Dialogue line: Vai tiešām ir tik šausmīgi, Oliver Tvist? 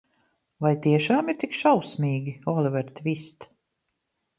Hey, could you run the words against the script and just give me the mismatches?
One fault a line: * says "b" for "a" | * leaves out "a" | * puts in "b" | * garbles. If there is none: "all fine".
all fine